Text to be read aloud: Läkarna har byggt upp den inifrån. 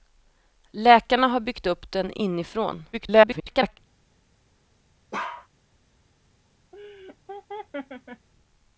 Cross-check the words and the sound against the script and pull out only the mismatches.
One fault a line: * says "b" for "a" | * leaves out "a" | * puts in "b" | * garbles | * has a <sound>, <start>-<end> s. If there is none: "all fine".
* garbles
* has a bark, 5.1-5.5 s
* has a laugh, 6.7-8.3 s